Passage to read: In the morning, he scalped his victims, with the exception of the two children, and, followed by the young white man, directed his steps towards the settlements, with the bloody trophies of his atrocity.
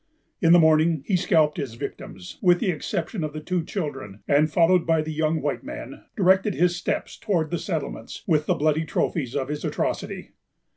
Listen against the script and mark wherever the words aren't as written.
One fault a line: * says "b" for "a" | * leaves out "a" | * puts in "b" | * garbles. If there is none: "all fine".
all fine